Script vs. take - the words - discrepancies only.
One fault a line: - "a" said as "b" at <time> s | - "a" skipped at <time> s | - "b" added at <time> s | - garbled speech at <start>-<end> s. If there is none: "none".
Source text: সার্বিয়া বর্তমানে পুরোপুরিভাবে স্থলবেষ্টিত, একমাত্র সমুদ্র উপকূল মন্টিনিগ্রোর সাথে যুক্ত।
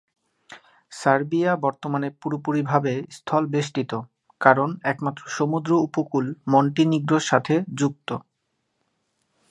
- "কারণ" added at 4.4 s